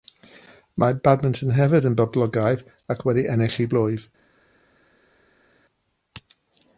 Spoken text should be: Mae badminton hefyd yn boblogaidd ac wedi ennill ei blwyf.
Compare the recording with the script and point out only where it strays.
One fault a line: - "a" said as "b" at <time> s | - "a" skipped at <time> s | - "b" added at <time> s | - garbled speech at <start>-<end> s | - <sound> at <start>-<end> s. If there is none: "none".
none